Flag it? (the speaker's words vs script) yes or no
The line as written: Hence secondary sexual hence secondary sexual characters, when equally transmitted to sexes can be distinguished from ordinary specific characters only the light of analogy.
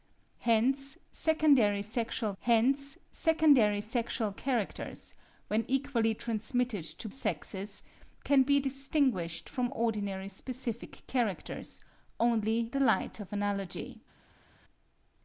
no